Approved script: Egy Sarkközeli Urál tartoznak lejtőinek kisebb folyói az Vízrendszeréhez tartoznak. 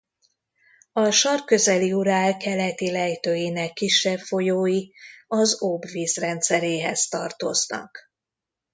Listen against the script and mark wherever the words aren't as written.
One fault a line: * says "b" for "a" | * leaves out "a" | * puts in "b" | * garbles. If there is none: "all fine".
* says "A" for "Egy"
* says "keleti" for "tartoznak"
* puts in "Ob"